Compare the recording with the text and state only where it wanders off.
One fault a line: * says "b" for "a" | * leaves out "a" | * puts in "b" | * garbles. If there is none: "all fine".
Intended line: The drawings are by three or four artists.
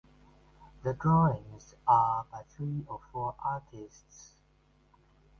all fine